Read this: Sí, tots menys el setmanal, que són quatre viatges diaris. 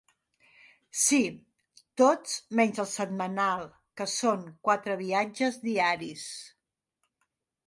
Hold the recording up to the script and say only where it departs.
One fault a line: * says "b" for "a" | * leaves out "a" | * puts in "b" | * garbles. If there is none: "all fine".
all fine